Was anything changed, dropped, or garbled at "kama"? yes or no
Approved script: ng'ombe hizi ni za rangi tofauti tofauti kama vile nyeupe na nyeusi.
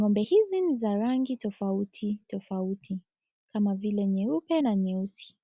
no